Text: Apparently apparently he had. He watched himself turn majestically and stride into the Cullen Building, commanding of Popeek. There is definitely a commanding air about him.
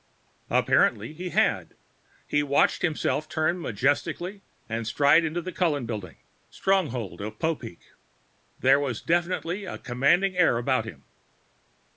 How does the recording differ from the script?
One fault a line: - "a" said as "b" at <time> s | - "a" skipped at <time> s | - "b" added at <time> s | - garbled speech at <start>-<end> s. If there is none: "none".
- "apparently" skipped at 1.1 s
- "commanding" said as "stronghold" at 6.5 s
- "is" said as "was" at 8.8 s